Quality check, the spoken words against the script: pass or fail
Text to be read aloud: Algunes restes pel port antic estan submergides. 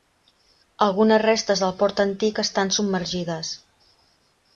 fail